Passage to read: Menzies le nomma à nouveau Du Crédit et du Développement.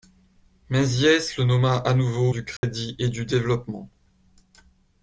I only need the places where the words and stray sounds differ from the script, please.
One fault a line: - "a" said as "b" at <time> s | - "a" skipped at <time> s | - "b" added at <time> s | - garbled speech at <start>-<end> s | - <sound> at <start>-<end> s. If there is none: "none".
- dropout at 2.6-2.6 s